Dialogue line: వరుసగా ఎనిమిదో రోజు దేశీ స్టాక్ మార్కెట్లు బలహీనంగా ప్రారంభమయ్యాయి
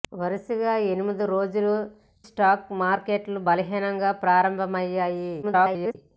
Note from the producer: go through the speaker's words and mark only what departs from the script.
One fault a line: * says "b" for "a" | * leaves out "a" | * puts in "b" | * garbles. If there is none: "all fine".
* leaves out "దేశీ"
* garbles